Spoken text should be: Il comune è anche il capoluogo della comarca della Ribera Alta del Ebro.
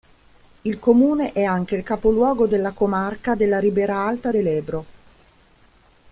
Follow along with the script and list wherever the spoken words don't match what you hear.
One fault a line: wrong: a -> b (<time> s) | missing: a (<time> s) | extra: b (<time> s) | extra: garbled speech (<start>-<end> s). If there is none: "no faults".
no faults